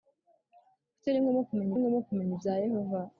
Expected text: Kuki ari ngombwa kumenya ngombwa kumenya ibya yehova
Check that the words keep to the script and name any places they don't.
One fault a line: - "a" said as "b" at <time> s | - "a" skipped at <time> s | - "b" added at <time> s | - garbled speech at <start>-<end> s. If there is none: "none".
none